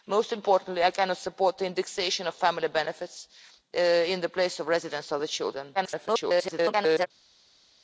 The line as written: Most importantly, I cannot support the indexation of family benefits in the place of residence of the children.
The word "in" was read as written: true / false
true